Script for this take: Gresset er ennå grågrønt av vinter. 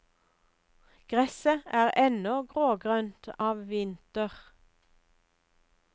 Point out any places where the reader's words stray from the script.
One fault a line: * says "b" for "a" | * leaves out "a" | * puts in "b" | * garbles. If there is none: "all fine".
all fine